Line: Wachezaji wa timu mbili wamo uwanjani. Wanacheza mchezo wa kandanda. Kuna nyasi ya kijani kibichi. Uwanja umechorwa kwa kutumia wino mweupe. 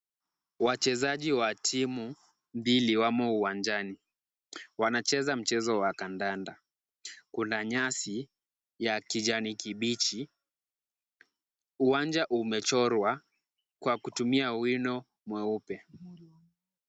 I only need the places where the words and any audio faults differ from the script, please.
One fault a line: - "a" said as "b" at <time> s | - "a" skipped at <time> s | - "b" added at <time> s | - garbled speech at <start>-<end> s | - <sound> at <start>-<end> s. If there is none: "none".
none